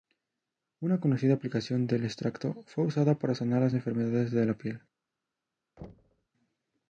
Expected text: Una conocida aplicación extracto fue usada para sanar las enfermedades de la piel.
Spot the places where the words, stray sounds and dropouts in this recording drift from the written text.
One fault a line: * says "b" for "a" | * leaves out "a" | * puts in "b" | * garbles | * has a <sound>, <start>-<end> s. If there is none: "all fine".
* puts in "del"
* has a thud, 5.8-6.3 s